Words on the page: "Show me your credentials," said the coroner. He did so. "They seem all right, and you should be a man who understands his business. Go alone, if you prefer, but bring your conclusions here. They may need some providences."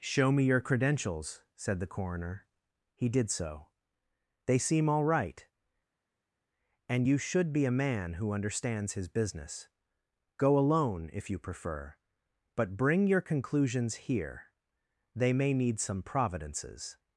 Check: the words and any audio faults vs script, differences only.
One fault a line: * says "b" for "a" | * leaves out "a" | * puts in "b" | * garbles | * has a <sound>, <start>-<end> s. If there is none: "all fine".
all fine